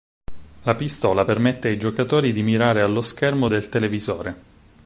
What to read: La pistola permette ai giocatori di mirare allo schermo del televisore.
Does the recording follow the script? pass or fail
pass